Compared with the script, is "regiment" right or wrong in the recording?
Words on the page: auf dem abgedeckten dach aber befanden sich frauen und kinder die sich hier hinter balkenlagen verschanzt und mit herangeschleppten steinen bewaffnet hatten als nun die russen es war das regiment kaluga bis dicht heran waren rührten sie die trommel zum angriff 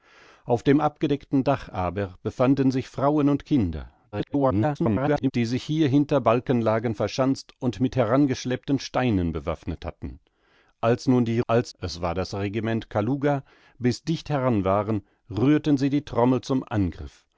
right